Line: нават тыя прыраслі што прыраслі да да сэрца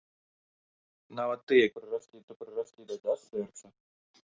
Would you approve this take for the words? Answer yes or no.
yes